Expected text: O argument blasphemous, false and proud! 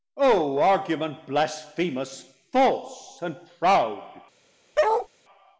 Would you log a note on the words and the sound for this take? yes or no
yes